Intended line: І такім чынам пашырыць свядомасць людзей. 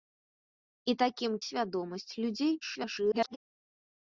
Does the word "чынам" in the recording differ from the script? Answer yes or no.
yes